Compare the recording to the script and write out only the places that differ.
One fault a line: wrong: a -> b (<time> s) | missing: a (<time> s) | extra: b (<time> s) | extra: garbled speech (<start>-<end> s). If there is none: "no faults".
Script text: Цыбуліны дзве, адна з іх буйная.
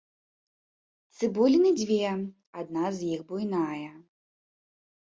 no faults